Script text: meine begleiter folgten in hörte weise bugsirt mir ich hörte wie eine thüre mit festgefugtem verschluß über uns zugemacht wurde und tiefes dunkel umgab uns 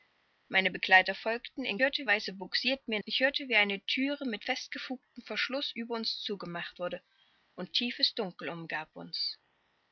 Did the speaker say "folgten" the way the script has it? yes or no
yes